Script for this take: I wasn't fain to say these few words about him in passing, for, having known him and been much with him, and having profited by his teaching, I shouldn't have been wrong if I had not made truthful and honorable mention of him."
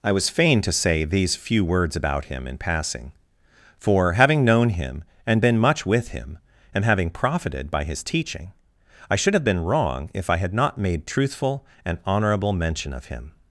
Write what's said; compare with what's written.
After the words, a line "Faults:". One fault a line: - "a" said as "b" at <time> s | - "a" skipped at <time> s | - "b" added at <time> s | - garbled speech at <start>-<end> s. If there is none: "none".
I was fain to say these few words about him in passing, for, having known him and been much with him, and having profited by his teaching, I should have been wrong if I had not made truthful and honorable mention of him."
Faults:
- "wasn't" said as "was" at 0.1 s
- "shouldn't" said as "should" at 9.2 s